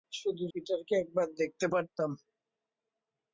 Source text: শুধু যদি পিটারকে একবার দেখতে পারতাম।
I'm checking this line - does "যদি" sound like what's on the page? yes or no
no